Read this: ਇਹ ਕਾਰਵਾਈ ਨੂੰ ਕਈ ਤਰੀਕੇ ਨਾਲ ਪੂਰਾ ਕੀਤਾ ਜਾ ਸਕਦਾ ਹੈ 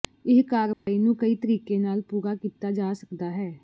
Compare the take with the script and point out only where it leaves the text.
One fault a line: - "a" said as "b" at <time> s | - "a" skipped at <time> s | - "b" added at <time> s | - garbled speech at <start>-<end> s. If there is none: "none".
none